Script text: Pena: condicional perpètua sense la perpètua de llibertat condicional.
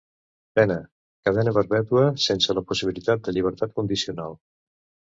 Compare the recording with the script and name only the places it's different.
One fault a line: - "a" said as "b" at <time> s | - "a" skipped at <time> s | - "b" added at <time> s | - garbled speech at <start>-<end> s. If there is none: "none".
- "condicional" said as "cadena" at 1.3 s
- "perpètua" said as "possibilitat" at 2.7 s